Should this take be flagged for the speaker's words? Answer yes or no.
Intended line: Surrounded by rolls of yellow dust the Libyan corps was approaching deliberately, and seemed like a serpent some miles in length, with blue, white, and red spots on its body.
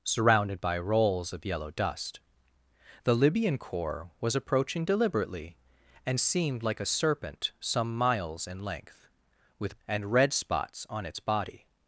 yes